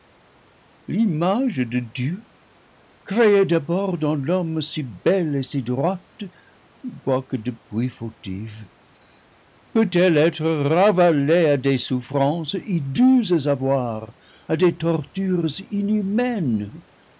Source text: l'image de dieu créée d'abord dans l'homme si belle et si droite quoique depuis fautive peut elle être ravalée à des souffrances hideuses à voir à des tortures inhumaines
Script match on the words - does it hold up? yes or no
yes